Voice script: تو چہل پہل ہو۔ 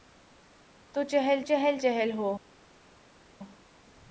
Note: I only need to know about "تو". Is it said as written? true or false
true